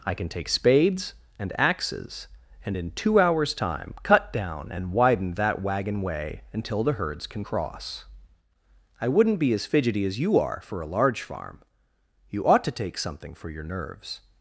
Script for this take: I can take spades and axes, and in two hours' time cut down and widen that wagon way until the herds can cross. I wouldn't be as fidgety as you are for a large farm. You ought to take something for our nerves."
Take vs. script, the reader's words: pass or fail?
fail